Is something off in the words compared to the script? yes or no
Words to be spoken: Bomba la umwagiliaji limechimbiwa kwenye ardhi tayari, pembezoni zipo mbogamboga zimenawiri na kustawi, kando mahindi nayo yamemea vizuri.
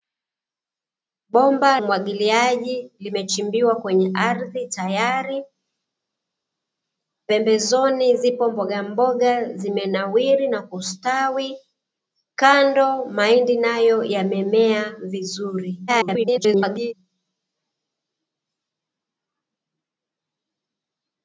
yes